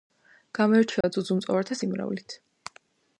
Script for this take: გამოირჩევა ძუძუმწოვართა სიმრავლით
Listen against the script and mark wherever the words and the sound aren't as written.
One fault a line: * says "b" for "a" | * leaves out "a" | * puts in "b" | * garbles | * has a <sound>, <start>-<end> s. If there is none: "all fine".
* has a dropout, 1.0-1.0 s